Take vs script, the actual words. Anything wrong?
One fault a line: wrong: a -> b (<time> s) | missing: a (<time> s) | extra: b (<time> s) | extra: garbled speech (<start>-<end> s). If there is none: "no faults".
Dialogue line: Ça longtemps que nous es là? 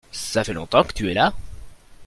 extra: fait (0.4 s)
wrong: nous -> tu (0.9 s)